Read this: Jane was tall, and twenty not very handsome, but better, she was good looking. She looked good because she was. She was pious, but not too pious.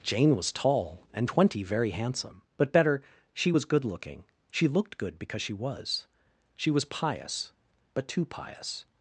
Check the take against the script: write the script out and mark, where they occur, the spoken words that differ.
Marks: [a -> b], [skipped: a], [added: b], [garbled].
Jane was tall, and twenty [skipped: not] very handsome, but better, she was good looking. She looked good because she was. She was pious, but [skipped: not] too pious.